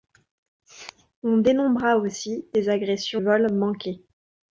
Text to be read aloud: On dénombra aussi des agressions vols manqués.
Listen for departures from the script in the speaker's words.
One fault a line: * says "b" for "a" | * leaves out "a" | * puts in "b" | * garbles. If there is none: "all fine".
all fine